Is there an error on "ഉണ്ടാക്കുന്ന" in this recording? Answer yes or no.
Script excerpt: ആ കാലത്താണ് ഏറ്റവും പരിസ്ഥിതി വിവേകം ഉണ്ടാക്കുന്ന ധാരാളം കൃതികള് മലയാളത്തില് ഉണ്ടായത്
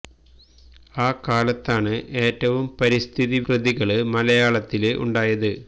yes